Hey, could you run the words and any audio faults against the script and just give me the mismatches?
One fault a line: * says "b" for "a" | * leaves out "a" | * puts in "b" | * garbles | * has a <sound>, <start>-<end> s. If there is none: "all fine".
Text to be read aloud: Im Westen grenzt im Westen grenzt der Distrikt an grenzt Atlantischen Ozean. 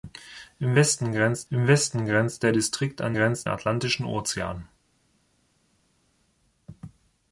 all fine